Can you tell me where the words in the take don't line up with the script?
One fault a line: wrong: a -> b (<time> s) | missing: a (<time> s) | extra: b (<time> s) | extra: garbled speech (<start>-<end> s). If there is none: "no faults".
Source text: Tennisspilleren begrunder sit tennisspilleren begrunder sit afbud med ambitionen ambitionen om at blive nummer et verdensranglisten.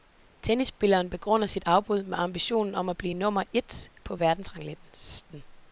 missing: tennisspilleren begrunder sit (1.6 s)
missing: ambitionen (2.7 s)
extra: på (4.0 s)